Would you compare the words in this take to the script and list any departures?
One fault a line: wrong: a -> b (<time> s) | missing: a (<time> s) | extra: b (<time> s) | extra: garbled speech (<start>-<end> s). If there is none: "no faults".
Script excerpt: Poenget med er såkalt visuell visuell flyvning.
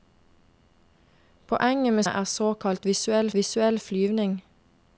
no faults